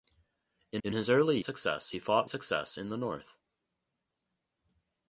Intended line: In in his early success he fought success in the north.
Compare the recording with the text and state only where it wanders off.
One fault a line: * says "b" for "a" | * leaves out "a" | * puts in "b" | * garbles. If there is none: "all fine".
all fine